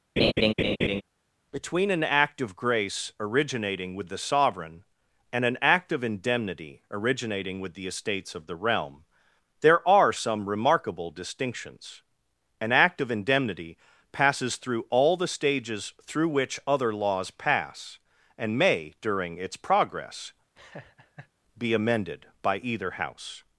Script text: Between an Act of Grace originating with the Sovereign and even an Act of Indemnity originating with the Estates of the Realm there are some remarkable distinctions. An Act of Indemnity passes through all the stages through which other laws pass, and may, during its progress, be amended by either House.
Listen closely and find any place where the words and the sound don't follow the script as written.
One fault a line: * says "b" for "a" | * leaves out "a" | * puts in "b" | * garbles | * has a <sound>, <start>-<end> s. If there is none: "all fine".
* has a laugh, 0.2-1.0 s
* leaves out "even"
* has a laugh, 20.6-21.3 s